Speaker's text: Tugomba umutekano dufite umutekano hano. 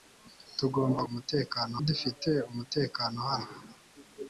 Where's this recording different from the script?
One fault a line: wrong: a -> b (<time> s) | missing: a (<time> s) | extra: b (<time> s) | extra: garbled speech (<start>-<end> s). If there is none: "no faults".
no faults